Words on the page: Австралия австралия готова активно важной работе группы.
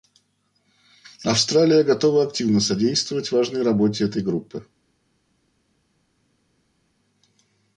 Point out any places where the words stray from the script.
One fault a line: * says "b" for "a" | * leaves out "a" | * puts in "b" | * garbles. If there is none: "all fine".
* leaves out "австралия"
* puts in "содействовать"
* puts in "этой"